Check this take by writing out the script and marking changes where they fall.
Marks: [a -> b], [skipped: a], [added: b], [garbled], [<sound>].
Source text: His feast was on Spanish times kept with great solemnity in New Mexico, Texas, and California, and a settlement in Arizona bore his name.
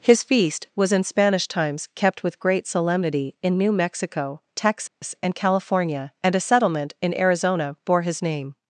His feast was [on -> in] Spanish times kept with great solemnity in New Mexico, Texas, [dropout] and California, and a settlement in Arizona bore his name.